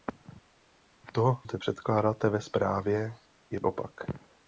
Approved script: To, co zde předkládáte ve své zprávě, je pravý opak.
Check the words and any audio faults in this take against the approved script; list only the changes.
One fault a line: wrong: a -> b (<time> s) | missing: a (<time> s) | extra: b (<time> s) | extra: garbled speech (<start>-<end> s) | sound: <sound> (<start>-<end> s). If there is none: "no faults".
missing: co (1.4 s)
missing: své (2.4 s)
missing: pravý (3.6 s)